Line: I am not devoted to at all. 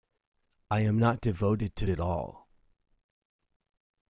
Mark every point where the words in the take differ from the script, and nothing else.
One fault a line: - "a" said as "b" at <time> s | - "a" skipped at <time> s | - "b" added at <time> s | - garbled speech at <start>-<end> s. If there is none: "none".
none